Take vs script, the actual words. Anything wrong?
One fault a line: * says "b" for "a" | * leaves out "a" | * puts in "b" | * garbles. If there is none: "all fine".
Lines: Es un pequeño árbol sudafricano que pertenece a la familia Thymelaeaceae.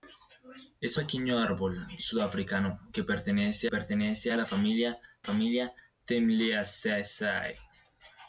* leaves out "un"
* puts in "pertenece"
* puts in "familia"